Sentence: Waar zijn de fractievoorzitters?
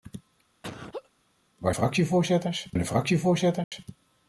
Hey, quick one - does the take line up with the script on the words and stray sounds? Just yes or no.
no